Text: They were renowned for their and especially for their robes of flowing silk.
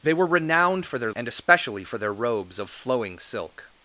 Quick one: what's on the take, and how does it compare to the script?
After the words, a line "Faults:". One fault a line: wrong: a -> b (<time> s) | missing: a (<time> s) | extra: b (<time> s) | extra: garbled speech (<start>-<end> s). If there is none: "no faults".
They were renowned for their and especially for their robes of flowing silk.
Faults:
no faults